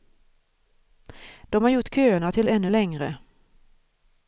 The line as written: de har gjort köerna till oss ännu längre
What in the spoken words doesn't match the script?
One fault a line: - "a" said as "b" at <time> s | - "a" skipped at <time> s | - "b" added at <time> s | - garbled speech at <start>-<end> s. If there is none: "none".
- "oss" skipped at 2.5 s